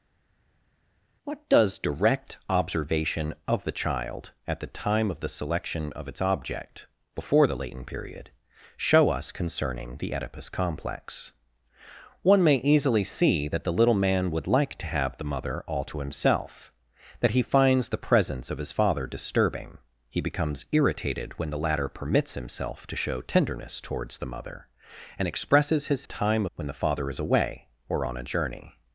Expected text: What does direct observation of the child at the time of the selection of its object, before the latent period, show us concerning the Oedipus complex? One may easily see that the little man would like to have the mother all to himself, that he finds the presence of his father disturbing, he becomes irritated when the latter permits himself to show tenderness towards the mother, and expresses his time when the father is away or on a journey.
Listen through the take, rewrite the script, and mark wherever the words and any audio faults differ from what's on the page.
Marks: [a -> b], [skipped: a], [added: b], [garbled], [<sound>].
What does direct observation of the child at the time of the selection of its object, before the latent period, show us concerning the Oedipus complex? One may easily see that the little man would like to have the mother all to himself, that he finds the presence of his father disturbing, he becomes irritated when the latter permits himself to show tenderness towards the mother, and expresses his time when the father is away or on a journey.